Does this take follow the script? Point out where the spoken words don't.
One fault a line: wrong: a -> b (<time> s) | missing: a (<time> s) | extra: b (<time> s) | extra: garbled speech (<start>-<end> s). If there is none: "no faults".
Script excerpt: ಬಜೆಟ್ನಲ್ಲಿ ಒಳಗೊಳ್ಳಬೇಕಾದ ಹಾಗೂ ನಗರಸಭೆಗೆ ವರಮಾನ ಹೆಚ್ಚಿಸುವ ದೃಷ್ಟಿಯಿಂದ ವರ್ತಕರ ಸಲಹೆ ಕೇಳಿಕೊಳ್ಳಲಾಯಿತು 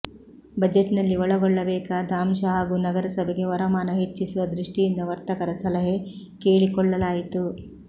extra: ಅಂಶ (2.2 s)